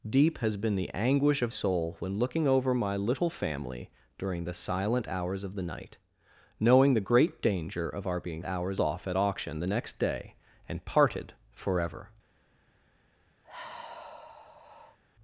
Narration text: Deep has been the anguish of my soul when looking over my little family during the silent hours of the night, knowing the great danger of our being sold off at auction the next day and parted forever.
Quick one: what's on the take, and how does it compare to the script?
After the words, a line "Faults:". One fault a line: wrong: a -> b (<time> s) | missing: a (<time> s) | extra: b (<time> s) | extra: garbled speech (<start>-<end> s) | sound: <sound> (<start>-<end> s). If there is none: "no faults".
Deep has been the anguish of soul when looking over my little family during the silent hours of the night, knowing the great danger of our being hours off at auction the next day and parted forever.
Faults:
missing: my (1.5 s)
wrong: sold -> hours (8.4 s)
sound: sigh (13.4-15.0 s)